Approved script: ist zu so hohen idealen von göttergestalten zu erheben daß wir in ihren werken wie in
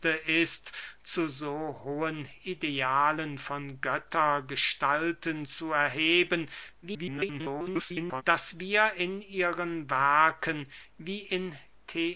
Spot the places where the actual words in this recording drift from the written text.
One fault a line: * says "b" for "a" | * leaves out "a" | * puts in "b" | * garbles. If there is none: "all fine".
* garbles